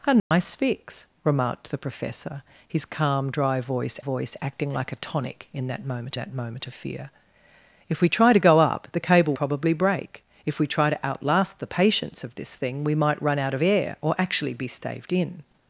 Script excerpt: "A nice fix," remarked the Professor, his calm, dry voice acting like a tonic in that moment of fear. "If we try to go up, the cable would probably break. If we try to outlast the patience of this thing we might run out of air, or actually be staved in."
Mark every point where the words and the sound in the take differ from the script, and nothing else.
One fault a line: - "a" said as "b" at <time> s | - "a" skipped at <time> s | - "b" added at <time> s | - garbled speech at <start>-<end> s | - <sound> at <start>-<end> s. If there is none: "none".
- dropout at 0.2-0.3 s
- "voice" added at 4.0 s
- "that moment" added at 6.1 s
- "would" skipped at 9.3 s